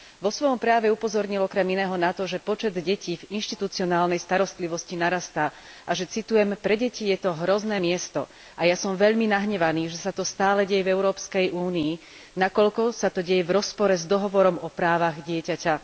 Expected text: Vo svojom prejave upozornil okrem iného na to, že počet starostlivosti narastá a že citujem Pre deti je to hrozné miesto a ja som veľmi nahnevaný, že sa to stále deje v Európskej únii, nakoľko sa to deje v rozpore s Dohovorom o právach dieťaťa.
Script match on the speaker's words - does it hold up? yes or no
no